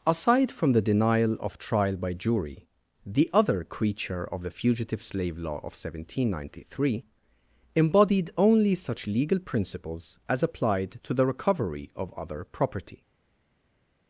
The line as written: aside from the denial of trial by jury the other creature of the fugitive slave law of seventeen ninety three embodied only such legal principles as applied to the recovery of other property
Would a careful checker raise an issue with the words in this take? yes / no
no